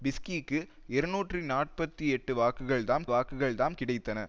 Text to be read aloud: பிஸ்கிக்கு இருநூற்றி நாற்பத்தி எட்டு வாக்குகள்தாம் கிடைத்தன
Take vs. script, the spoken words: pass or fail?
fail